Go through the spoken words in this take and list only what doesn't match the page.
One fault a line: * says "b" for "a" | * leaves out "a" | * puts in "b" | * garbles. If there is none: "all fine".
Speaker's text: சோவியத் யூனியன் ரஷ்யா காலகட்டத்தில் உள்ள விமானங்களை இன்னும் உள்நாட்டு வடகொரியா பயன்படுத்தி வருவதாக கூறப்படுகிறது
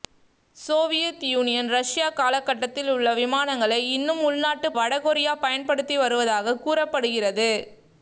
all fine